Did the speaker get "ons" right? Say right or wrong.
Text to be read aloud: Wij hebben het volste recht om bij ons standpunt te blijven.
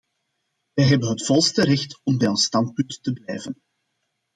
right